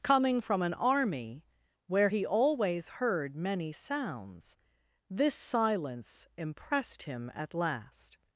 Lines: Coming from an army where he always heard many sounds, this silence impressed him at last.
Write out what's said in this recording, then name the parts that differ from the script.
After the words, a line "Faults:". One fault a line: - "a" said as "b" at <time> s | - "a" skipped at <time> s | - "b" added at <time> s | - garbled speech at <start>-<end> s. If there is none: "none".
Coming from an army where he always heard many sounds, this silence impressed him at last.
Faults:
none